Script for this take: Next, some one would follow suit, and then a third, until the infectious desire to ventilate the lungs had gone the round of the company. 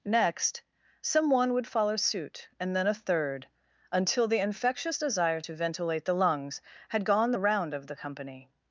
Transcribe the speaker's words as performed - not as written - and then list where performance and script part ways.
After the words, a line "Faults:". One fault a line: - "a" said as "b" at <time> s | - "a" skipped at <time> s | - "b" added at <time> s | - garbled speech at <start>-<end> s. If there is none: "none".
Next, some one would follow suit, and then a third, until the infectious desire to ventilate the lungs had gone the round of the company.
Faults:
none